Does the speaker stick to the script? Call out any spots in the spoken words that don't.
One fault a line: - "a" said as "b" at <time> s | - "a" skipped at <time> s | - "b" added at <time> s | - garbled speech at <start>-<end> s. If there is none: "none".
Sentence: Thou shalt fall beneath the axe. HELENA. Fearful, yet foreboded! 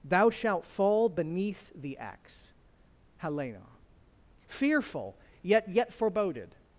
- "yet" added at 5.7 s